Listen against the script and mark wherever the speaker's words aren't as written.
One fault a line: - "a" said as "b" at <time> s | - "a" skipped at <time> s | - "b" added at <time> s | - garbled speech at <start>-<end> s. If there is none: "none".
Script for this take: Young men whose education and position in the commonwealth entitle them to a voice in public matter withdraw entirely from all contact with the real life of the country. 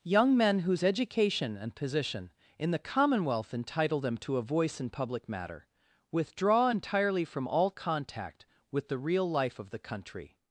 none